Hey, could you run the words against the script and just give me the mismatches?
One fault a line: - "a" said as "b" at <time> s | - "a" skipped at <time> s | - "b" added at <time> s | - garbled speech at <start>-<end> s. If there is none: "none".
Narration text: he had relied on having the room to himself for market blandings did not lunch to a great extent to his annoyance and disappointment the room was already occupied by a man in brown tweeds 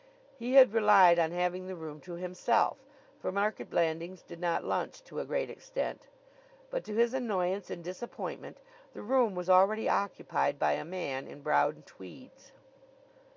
- "but" added at 6.7 s